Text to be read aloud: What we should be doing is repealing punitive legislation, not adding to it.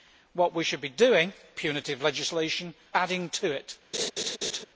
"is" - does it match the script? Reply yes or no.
no